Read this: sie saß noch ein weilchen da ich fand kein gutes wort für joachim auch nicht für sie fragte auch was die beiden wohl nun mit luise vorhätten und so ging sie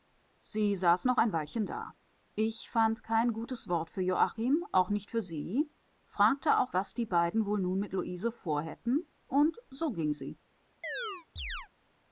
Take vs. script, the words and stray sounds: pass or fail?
fail